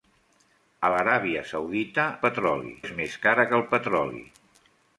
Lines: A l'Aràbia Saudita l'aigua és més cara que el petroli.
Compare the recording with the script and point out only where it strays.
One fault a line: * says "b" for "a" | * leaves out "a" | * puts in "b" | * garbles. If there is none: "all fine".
* says "petroli" for "l'aigua"